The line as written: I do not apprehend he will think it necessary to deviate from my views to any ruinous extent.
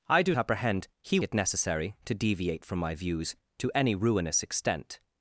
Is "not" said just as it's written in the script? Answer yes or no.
no